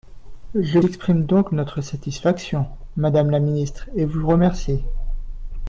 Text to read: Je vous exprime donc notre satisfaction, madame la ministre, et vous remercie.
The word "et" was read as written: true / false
true